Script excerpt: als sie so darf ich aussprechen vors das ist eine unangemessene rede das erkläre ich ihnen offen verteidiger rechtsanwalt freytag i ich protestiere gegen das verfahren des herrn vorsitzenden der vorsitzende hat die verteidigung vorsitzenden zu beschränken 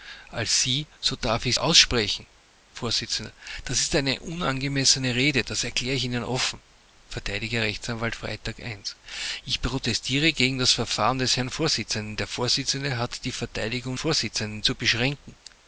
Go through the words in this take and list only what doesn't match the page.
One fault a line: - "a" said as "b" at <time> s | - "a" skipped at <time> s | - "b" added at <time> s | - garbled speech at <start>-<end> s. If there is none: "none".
none